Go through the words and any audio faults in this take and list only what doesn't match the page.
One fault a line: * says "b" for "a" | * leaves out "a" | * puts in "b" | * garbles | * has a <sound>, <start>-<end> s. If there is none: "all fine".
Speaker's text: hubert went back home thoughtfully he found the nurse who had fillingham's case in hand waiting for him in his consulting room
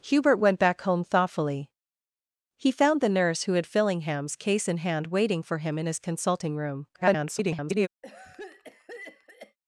* garbles
* has a cough, 8.0-9.6 s